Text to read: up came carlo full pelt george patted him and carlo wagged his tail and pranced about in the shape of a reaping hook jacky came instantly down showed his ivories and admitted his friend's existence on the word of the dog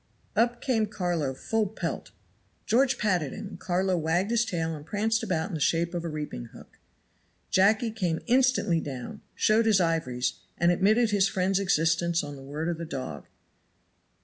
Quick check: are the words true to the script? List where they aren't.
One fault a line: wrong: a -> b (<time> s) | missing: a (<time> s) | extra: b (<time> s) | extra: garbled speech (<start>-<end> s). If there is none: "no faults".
no faults